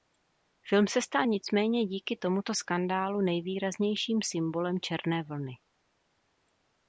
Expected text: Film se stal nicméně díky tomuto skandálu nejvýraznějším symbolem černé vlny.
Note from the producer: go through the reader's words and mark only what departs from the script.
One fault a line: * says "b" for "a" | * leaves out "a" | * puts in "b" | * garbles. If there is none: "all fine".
all fine